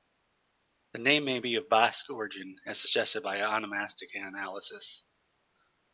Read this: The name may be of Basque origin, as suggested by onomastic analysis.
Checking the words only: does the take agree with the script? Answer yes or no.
yes